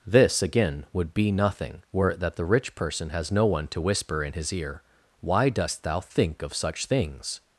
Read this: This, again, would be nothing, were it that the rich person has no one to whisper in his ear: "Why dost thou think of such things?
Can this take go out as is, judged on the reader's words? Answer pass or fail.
pass